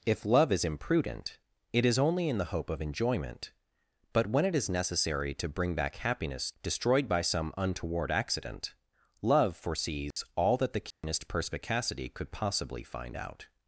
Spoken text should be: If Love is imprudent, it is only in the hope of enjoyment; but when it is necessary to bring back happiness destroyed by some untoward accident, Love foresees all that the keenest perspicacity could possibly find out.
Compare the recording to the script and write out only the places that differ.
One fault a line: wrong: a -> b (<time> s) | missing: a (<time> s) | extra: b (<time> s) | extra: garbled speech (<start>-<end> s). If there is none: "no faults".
no faults